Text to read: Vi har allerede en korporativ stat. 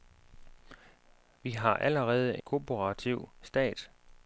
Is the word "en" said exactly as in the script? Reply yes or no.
no